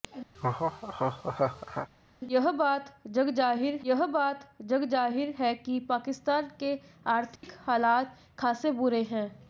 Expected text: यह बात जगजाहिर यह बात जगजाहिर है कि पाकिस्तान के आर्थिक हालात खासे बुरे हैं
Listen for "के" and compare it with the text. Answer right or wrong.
right